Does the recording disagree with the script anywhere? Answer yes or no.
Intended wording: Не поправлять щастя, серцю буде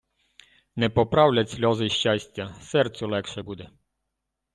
yes